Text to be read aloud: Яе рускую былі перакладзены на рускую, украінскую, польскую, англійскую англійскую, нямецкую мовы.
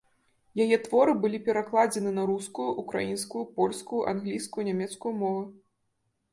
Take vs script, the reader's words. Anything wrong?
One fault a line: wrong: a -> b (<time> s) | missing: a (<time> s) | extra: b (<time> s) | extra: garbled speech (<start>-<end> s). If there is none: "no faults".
wrong: рускую -> творы (0.8 s)
missing: англійскую (4.7 s)